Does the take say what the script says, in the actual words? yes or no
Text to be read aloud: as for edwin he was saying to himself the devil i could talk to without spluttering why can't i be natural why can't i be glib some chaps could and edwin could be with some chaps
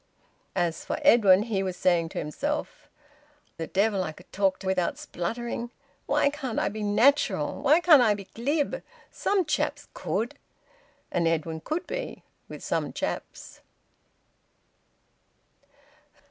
yes